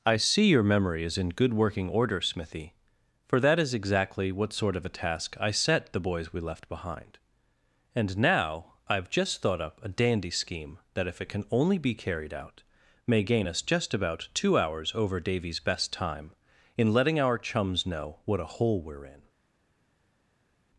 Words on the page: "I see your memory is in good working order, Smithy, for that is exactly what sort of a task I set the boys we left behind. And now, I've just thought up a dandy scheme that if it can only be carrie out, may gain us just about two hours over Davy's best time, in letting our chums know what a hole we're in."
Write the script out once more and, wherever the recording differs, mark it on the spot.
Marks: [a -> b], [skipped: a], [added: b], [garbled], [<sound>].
"I see your memory is in good working order, Smithy, for that is exactly what sort of a task I set the boys we left behind. And now, I've just thought up a dandy scheme that if it can only be [carrie -> carried] out, may gain us just about two hours over Davy's best time, in letting our chums know what a hole we're in."